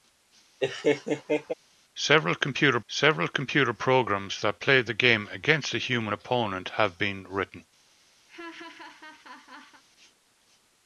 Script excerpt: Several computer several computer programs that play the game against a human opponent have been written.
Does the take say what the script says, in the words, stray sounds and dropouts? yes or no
no